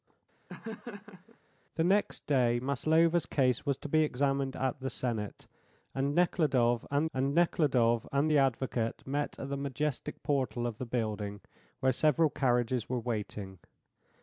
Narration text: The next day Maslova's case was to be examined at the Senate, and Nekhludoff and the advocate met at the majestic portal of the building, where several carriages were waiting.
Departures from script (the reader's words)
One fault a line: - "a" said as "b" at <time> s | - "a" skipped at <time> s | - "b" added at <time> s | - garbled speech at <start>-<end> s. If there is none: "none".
- "and Nekhludoff and" added at 7.1 s